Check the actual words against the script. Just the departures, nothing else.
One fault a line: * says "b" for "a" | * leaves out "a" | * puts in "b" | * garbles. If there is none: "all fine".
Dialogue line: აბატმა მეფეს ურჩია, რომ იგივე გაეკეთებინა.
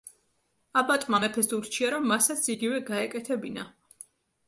* puts in "მასაც"